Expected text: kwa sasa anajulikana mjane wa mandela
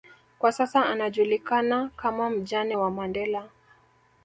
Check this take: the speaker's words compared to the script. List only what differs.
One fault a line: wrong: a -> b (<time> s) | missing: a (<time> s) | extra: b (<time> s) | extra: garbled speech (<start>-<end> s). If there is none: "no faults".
extra: kama (1.9 s)